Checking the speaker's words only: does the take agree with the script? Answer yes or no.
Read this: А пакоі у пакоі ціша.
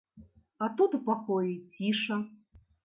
no